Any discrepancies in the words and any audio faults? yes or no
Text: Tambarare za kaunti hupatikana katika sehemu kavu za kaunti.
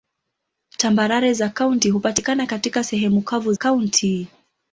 yes